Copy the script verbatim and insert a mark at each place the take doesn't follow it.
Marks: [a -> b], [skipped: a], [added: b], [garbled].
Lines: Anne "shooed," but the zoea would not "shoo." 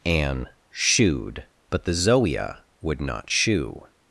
Anne "shooed," but the zoea would not "shoo."